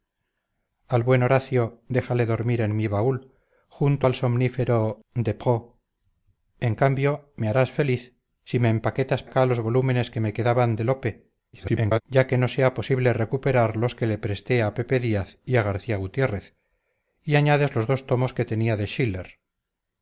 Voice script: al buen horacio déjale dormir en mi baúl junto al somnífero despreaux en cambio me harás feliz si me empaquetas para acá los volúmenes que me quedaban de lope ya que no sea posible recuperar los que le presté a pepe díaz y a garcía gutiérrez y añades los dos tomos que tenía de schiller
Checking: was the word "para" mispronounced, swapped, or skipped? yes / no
yes